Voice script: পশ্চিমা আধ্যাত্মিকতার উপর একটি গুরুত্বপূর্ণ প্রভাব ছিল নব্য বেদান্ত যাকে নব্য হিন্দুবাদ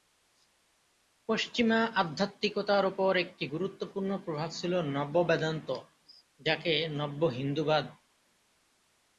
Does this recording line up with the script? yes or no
yes